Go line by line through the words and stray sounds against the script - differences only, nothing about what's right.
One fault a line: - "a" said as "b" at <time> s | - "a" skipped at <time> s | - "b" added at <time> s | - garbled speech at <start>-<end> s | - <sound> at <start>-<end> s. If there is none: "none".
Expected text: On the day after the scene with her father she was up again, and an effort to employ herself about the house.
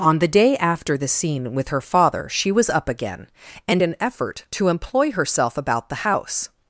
none